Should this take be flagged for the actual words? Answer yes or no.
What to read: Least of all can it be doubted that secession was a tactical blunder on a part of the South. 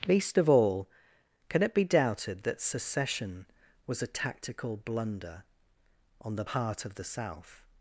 yes